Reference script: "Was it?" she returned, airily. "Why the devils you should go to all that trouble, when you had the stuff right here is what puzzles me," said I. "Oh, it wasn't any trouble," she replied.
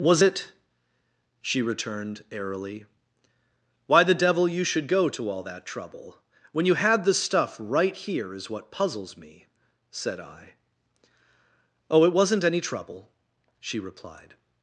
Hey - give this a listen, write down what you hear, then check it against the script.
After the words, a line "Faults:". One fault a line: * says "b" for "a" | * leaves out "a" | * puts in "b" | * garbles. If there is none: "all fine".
"Was it?" she returned, airily. "Why the devil you should go to all that trouble, when you had the stuff right here is what puzzles me," said I. "Oh, it wasn't any trouble," she replied.
Faults:
* says "devil" for "devils"